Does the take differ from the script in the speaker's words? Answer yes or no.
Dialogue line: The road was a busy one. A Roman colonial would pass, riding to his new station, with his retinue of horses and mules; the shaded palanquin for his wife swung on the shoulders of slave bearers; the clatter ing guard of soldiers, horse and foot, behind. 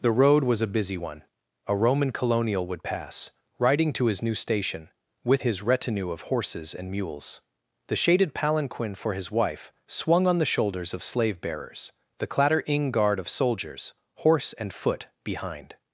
no